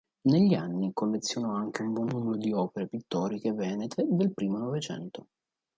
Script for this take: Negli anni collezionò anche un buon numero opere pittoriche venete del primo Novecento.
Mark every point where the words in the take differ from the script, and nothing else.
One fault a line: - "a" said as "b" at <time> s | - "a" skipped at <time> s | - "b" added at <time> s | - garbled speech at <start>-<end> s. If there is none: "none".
- "di" added at 2.4 s